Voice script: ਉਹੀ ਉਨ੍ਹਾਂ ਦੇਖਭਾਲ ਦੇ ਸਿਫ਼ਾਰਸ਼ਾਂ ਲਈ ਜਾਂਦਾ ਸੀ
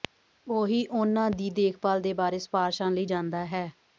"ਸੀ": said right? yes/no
no